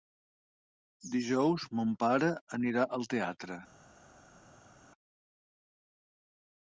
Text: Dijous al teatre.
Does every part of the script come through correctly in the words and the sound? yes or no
no